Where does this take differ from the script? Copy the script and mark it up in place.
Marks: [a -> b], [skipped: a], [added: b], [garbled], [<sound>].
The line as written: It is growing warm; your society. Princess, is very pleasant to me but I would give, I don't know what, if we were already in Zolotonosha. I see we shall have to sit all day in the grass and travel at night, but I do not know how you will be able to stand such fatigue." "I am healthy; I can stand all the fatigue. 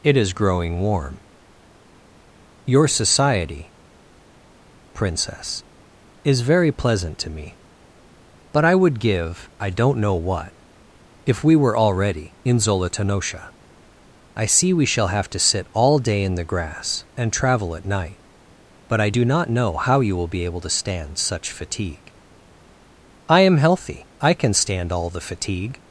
It is growing warm; your society. Princess, is very pleasant to me but I would give, I don't know what, if we were already in Zolotonosha. I see we shall have to sit all day in the grass and travel at night, but I do not know how you will be able to stand such fatigue." "I am healthy; I can stand all the fatigue.